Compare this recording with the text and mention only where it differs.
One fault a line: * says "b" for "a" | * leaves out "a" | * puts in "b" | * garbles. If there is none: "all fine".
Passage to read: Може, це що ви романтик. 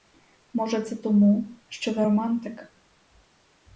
* puts in "тому"